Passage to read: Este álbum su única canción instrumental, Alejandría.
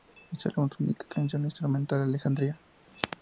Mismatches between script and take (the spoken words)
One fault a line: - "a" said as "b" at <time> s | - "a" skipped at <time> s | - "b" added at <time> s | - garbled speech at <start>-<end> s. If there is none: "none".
none